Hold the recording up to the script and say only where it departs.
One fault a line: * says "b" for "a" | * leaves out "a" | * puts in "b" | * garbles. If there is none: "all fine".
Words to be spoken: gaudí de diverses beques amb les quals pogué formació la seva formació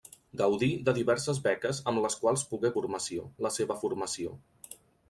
all fine